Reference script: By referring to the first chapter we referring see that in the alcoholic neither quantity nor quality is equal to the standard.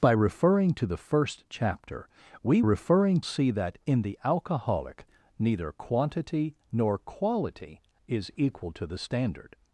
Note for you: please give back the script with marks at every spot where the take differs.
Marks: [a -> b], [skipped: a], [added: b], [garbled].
By referring to the first chapter we referring see that in the alcoholic neither quantity nor quality is equal to the standard.